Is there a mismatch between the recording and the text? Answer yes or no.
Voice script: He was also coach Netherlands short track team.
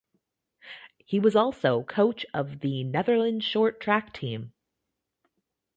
yes